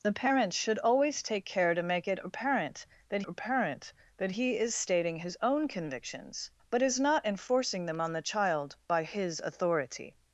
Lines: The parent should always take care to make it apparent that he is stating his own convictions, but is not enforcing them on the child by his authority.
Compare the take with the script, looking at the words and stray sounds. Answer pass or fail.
fail